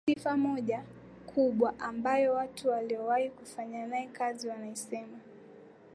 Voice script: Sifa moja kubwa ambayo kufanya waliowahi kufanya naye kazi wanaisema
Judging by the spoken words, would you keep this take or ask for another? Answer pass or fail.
fail